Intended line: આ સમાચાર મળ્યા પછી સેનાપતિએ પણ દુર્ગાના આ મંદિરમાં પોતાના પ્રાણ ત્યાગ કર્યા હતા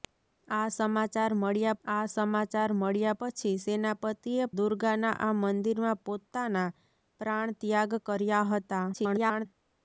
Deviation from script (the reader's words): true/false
true